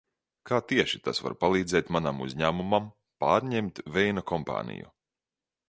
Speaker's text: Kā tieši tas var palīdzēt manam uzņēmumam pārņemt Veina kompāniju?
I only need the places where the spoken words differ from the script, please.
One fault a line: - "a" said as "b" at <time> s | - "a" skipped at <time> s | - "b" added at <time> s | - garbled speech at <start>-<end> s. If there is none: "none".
none